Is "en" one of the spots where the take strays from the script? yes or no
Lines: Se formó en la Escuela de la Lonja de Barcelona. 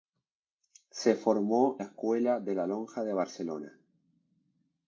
yes